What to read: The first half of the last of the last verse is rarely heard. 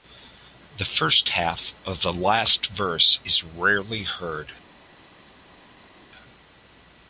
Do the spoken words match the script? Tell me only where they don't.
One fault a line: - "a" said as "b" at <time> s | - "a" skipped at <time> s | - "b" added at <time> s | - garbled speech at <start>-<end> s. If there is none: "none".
- "of the last" skipped at 2.6 s